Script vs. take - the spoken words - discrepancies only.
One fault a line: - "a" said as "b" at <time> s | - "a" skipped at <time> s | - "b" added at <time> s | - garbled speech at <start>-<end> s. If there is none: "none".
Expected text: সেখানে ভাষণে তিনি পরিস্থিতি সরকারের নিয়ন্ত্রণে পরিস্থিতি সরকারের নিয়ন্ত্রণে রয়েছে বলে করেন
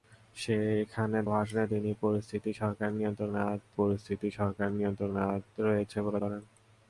none